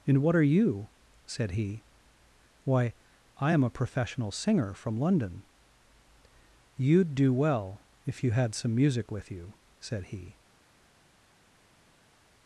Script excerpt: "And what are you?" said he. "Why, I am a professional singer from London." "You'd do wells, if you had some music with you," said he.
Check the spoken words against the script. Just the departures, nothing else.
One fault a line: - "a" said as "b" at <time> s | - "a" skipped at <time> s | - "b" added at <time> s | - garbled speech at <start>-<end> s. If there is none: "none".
- "wells" said as "well" at 7.3 s